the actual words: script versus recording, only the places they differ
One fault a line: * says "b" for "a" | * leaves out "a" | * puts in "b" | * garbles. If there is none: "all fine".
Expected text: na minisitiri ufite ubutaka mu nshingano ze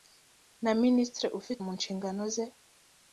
* leaves out "ubutaka"